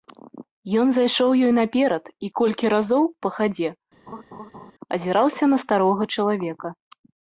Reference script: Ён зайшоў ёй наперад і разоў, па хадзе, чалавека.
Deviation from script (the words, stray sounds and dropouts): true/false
true